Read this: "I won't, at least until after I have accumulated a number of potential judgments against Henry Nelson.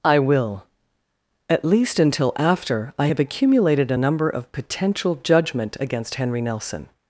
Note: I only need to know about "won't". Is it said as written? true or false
false